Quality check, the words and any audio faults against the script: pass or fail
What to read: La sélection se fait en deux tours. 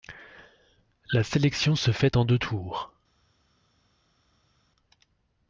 pass